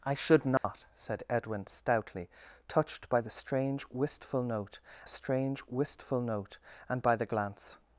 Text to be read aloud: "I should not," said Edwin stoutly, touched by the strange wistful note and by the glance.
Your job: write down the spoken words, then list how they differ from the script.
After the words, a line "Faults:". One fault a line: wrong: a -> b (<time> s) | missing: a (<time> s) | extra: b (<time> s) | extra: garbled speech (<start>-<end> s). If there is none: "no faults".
"I should not," said Edwin stoutly, touched by the strange wistful note strange wistful note and by the glance.
Faults:
extra: strange wistful note (5.1 s)